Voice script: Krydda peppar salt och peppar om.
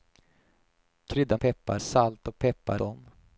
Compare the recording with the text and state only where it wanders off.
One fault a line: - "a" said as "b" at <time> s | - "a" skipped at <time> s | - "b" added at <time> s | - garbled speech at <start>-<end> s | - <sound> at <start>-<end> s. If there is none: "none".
none